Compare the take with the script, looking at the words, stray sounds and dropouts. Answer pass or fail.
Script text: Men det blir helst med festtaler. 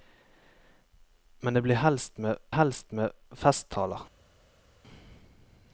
fail